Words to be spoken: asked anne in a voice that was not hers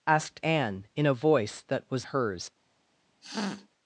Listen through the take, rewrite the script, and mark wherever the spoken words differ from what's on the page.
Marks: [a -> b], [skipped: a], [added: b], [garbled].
asked anne in a voice that was [skipped: not] hers